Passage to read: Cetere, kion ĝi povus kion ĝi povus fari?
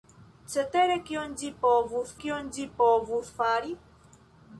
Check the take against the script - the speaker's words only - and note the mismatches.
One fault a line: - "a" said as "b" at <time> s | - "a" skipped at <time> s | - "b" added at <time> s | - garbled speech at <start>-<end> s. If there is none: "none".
none